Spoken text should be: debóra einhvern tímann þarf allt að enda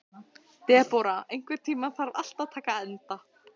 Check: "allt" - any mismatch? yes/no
no